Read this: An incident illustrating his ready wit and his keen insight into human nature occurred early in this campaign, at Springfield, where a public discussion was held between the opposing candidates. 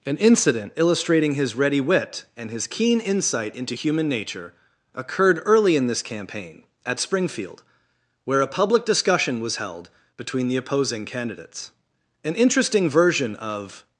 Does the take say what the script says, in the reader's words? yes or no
no